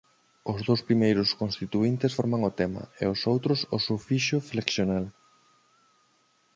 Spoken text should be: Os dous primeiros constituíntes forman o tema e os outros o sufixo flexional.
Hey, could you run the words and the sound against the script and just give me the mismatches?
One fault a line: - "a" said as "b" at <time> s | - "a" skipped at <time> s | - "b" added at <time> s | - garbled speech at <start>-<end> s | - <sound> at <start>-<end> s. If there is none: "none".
none